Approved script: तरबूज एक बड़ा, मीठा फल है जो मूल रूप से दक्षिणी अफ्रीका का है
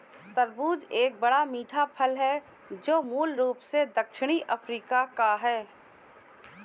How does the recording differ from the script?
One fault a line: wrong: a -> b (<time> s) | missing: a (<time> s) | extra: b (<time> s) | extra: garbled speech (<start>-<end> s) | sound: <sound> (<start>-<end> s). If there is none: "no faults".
no faults